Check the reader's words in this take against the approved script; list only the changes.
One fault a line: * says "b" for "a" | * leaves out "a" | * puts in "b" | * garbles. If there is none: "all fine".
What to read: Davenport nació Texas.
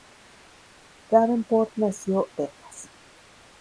all fine